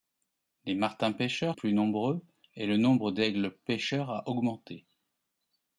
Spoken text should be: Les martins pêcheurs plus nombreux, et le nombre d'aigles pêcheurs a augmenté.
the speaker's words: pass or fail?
pass